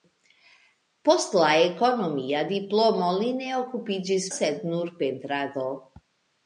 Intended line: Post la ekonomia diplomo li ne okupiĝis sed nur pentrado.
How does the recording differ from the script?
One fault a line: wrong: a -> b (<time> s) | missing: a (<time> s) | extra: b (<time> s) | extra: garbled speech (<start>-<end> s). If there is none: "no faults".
no faults